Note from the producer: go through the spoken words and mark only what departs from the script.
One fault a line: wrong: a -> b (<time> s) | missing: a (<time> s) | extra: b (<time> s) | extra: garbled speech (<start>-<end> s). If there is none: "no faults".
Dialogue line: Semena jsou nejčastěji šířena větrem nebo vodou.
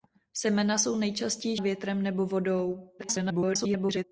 missing: šířena (1.6 s)
extra: garbled speech (3.0-4.0 s)